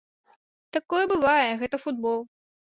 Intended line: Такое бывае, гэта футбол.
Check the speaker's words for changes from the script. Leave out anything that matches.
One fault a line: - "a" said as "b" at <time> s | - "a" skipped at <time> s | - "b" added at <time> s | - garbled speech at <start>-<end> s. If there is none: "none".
none